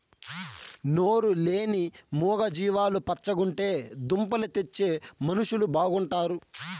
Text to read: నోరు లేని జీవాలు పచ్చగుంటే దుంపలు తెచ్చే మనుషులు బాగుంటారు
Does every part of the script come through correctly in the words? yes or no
no